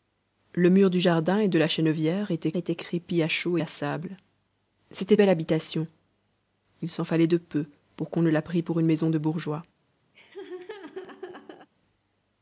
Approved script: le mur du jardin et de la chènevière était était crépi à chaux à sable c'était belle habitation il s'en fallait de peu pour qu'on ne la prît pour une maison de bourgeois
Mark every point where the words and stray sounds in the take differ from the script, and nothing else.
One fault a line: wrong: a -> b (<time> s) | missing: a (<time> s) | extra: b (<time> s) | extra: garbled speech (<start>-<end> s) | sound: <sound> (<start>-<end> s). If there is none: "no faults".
sound: laugh (10.1-11.7 s)